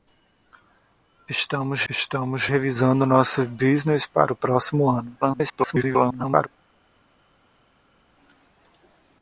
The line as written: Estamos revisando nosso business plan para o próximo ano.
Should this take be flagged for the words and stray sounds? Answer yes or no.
yes